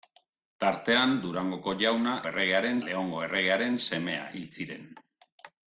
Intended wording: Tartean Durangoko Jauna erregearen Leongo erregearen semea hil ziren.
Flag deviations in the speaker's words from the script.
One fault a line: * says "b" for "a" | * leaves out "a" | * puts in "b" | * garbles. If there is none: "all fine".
all fine